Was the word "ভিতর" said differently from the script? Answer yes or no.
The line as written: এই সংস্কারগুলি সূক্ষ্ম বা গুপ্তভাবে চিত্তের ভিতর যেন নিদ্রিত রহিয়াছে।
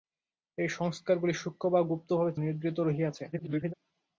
yes